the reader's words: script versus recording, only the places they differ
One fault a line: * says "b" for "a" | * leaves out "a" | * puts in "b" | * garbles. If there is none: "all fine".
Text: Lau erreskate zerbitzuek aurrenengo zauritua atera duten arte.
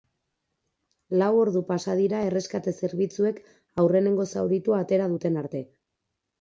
* puts in "ordu pasa dira"